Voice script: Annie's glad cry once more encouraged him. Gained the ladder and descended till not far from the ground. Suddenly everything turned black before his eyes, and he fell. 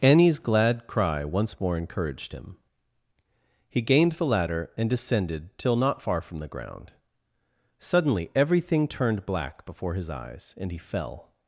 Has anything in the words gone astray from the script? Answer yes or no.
yes